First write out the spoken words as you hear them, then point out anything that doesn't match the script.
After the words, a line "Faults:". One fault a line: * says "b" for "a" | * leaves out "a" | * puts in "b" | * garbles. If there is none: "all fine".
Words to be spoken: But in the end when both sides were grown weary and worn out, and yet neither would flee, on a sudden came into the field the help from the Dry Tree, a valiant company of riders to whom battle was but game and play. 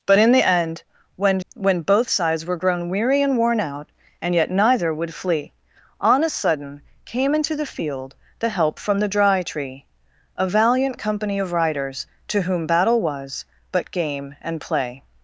But in the end when when both sides were grown weary and worn out, and yet neither would flee, on a sudden came into the field the help from the Dry Tree, a valiant company of riders to whom battle was but game and play.
Faults:
* puts in "when"